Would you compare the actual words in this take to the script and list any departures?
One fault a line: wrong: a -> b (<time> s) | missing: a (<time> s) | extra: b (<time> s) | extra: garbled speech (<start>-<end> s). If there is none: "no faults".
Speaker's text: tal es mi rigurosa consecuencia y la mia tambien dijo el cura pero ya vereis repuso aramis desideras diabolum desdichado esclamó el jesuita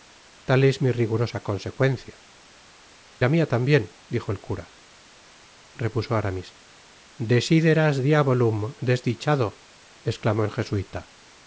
missing: y (2.2 s)
missing: pero ya vereis (4.7 s)